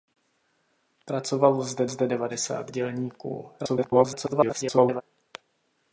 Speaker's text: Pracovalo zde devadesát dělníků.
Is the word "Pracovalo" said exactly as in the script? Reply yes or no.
yes